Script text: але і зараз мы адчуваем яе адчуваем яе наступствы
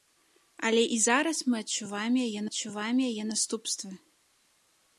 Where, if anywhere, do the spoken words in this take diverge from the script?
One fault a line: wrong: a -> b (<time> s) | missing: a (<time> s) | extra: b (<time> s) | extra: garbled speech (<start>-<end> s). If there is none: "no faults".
no faults